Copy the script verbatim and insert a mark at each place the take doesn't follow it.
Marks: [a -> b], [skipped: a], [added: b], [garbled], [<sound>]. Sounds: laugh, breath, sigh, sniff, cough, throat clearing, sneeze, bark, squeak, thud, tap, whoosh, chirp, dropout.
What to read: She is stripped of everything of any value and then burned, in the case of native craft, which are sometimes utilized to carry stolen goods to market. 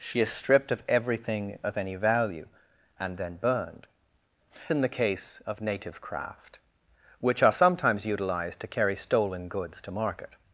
She is stripped of everything of any value and then burned, in the case of native craft, which are sometimes utilized to carry stolen goods to market.